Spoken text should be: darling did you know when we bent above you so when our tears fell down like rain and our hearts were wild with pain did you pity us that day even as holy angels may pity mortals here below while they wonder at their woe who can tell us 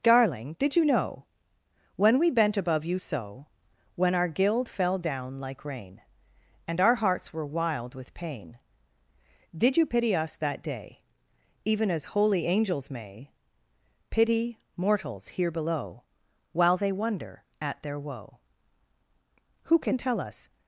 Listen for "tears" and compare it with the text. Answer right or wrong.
wrong